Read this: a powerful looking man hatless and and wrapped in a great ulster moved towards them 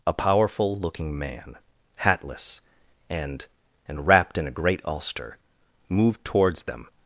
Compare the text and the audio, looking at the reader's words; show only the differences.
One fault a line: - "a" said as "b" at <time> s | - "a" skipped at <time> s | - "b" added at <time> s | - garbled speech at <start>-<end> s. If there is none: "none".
none